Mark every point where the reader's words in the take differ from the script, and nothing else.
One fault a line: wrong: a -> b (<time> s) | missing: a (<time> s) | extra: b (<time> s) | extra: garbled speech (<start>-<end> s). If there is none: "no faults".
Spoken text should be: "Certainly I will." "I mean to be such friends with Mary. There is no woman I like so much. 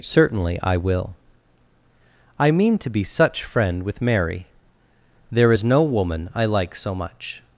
wrong: friends -> friend (3.4 s)